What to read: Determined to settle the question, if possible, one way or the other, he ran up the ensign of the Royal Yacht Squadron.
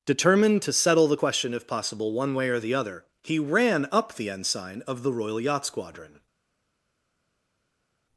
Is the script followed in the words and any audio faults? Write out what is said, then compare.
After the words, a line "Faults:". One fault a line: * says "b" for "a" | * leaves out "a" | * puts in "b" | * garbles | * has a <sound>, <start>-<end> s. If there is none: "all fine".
Determined to settle the question, if possible, one way or the other, he ran up the ensign of the Royal Yacht Squadron.
Faults:
all fine